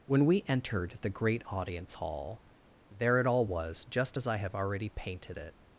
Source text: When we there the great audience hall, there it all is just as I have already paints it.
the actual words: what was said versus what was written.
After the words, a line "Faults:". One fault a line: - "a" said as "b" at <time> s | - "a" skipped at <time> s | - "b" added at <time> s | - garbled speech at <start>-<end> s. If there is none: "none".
When we entered the great audience hall, there it all was just as I have already painted it.
Faults:
- "there" said as "entered" at 0.5 s
- "is" said as "was" at 3.4 s
- "paints" said as "painted" at 4.9 s